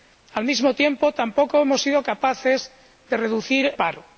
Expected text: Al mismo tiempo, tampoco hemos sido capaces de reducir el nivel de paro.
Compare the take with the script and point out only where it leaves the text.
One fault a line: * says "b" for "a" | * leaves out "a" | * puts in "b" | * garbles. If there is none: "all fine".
* leaves out "el nivel de"